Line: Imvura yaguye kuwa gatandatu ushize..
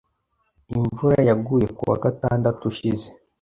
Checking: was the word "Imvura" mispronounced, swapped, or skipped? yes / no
no